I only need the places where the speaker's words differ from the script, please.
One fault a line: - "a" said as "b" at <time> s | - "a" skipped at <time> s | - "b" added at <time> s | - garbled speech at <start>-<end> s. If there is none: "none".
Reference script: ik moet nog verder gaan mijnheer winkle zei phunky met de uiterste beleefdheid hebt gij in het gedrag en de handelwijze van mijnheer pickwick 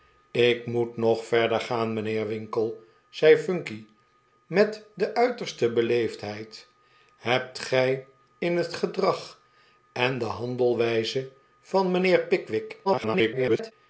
- garbled speech at 12.8-13.7 s